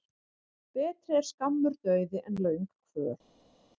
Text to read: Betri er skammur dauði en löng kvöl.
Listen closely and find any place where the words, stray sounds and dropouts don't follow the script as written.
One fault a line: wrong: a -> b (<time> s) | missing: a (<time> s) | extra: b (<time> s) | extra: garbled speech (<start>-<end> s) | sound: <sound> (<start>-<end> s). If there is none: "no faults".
no faults